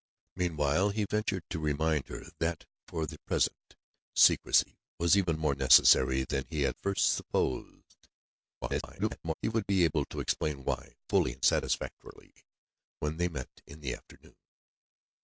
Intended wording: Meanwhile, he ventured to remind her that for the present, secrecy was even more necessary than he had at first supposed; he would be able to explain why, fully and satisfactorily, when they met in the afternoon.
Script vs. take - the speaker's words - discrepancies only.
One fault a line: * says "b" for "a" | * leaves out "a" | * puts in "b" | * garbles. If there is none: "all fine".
* leaves out "at"
* garbles